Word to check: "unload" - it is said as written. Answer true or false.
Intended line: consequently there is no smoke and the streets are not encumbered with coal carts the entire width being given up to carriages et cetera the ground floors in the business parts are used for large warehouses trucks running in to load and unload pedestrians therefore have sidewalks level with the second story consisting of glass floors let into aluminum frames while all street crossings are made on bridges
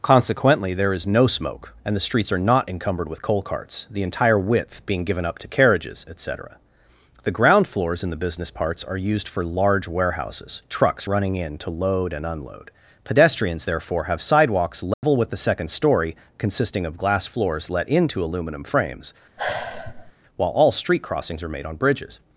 true